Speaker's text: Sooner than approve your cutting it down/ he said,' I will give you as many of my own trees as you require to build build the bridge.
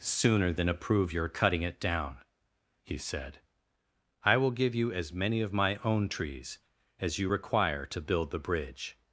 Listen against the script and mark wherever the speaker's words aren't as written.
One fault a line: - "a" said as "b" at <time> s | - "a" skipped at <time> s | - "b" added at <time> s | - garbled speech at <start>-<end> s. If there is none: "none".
- "build" skipped at 8.3 s